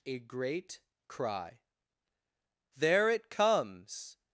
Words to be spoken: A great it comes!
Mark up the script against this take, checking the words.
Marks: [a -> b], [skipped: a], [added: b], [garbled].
A great [added: cry There] it comes!